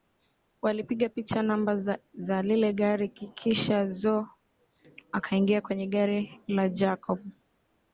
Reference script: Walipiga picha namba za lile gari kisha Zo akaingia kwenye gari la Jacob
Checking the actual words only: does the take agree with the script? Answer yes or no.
yes